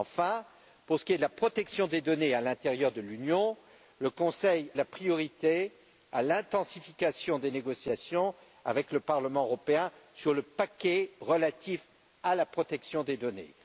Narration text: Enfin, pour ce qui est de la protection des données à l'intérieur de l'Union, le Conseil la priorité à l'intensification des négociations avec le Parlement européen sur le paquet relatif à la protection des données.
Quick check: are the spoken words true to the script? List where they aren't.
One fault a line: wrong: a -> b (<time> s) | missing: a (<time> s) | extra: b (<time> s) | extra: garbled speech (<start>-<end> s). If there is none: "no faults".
no faults